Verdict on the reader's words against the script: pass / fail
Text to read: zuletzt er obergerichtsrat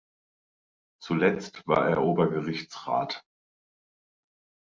fail